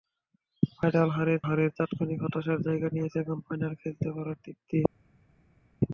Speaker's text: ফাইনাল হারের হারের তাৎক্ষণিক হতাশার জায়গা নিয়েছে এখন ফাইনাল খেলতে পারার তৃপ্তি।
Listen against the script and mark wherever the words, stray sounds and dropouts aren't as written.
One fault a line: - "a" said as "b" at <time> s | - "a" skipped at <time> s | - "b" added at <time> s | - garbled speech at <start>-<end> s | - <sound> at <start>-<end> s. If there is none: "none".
none